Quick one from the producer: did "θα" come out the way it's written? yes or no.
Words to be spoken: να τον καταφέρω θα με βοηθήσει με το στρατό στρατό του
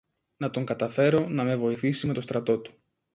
no